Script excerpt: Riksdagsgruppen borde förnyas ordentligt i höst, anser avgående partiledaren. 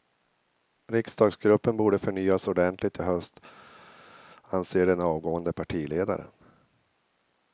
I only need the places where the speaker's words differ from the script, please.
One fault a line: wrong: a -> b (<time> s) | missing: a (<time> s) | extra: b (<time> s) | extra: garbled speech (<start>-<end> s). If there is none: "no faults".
extra: den (4.8 s)